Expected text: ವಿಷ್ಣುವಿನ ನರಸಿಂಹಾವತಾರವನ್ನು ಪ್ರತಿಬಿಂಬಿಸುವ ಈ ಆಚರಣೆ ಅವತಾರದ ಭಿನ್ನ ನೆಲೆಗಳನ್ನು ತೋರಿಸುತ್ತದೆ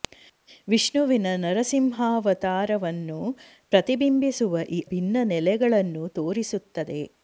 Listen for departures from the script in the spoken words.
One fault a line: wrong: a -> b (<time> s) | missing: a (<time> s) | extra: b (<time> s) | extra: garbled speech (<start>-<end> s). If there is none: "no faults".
missing: ಆಚರಣೆ ಅವತಾರದ (4.8 s)